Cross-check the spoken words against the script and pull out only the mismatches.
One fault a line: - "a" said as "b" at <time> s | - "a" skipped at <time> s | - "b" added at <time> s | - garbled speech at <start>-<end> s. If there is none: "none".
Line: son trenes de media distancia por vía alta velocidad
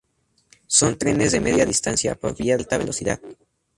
none